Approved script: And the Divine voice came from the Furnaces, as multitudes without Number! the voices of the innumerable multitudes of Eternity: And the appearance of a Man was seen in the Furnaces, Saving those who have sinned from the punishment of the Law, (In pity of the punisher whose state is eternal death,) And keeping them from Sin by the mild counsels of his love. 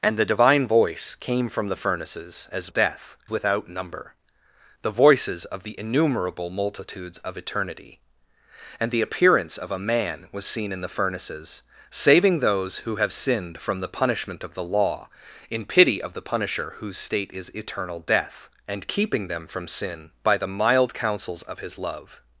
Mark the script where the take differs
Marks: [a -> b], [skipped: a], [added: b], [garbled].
And the Divine voice came from the Furnaces, as [multitudes -> death] without Number! the voices of the innumerable multitudes of Eternity: And the appearance of a Man was seen in the Furnaces, Saving those who have sinned from the punishment of the Law, (In pity of the punisher whose state is eternal death,) And keeping them from Sin by the mild counsels of his love.